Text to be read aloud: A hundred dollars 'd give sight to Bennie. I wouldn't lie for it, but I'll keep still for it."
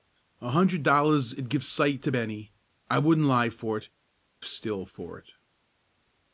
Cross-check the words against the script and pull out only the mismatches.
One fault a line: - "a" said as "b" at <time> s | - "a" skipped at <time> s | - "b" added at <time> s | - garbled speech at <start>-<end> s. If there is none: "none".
- "but I'll keep" skipped at 3.9 s